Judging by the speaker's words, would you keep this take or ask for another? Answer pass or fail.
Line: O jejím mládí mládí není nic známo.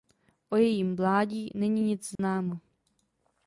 fail